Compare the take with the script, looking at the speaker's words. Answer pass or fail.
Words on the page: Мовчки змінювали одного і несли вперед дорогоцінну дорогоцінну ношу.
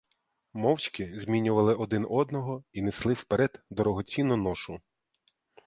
fail